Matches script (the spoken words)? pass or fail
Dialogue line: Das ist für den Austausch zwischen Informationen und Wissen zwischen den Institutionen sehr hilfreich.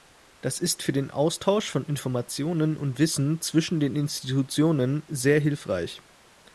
fail